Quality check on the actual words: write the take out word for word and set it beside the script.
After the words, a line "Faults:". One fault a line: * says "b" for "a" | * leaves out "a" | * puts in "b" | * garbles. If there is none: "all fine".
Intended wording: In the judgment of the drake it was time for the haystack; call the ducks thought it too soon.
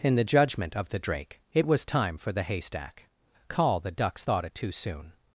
In the judgment of the drake it was time for the haystack; call the ducks thought it too soon.
Faults:
all fine